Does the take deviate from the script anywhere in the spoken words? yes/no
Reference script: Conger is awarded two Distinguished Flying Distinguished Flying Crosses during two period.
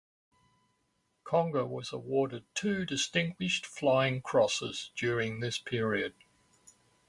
yes